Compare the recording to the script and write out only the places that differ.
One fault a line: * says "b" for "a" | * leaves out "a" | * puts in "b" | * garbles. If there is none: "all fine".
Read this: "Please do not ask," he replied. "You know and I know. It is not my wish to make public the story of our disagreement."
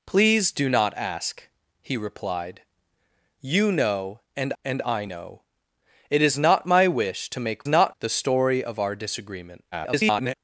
* puts in "and"
* says "not" for "public"
* garbles